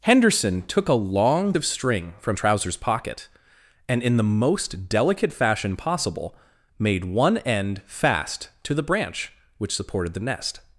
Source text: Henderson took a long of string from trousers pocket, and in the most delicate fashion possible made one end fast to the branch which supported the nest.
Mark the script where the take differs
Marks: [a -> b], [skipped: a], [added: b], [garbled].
Henderson took a long of string from trousers pocket, and in the most delicate fashion possible made one end fast to the branch which supported the nest.